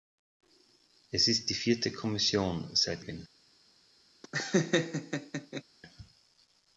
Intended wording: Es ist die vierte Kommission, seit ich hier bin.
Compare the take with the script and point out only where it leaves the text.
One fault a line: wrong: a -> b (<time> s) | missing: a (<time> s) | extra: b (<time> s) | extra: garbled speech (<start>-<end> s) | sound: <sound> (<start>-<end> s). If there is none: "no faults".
missing: ich hier (3.1 s)
sound: laugh (4.2-5.6 s)